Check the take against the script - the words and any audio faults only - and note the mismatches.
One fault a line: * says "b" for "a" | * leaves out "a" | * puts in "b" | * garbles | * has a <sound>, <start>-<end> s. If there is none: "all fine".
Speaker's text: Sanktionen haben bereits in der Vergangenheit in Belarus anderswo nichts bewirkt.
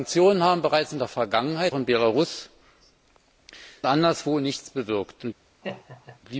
* has a laugh, 5.6-6.2 s